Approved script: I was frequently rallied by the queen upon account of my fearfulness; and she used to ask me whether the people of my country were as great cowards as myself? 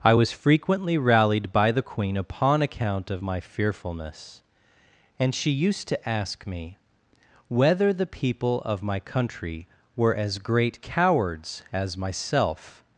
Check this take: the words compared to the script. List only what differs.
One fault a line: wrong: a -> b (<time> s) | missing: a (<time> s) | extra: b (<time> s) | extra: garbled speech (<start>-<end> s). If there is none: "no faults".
no faults